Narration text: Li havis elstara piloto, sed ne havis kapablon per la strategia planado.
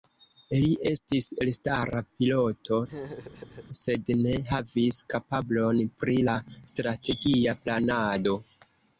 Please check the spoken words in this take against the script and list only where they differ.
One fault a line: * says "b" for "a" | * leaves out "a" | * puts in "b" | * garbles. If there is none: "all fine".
* says "estis" for "havis"
* says "pri" for "per"